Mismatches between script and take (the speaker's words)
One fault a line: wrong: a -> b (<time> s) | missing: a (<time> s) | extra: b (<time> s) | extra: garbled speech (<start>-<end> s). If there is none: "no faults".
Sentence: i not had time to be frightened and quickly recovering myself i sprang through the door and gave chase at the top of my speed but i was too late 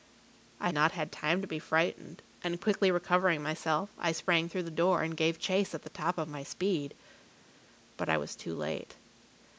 no faults